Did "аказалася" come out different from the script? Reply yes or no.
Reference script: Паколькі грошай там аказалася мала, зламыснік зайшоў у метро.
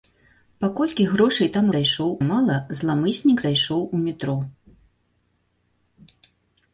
yes